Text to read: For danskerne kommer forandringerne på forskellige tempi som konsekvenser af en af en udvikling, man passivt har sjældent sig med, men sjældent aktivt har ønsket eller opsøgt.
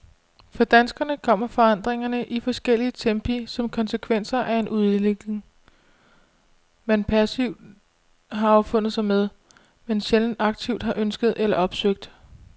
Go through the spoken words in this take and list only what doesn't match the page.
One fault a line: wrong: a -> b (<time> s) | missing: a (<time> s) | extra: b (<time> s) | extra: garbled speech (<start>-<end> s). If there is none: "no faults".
wrong: på -> i (2.2 s)
missing: af en (4.7 s)
wrong: sjældent -> affundet (8.5 s)